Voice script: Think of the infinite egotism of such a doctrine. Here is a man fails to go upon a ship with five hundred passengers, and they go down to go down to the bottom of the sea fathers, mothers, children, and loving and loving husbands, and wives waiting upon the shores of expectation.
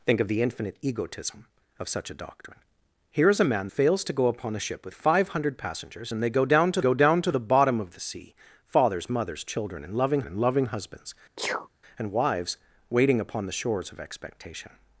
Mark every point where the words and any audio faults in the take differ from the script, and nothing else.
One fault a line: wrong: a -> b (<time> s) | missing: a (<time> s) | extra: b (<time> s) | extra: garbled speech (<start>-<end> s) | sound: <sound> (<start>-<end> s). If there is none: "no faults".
sound: sneeze (11.4-11.7 s)